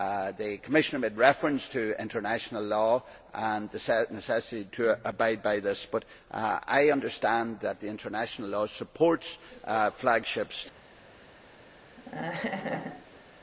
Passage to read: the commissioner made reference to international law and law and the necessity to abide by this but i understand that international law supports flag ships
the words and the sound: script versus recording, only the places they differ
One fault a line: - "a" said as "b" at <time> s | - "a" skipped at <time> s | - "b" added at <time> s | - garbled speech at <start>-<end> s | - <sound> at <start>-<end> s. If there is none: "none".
- "law and" skipped at 3.7 s
- laugh at 12.0-13.2 s